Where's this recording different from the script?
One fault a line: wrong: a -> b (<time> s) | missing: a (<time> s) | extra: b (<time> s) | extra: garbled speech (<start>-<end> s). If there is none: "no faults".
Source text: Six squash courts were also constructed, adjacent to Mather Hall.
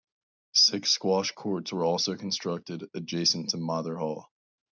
no faults